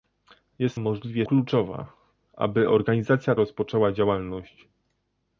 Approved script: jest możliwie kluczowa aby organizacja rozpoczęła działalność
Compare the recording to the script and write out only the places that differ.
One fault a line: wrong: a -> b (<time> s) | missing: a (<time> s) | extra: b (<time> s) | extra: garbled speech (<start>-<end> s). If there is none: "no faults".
no faults